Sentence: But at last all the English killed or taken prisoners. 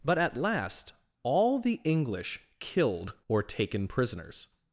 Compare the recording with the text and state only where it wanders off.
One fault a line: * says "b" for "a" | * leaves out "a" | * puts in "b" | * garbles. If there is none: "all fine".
all fine